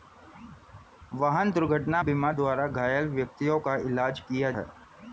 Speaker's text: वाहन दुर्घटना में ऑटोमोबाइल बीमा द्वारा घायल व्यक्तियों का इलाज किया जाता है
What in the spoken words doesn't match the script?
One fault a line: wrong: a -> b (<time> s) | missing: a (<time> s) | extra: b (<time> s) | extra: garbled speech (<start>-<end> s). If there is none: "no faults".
missing: में ऑटोमोबाइल (2.0 s)
missing: जाता (4.5 s)